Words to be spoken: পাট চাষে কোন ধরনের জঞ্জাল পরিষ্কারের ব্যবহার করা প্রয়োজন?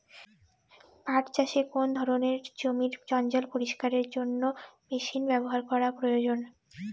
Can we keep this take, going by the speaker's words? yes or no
no